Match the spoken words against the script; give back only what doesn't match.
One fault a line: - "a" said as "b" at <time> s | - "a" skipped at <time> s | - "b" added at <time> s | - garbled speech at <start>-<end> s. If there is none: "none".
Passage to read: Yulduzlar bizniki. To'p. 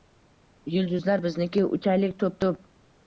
- "Uchaylik to'p" added at 1.8 s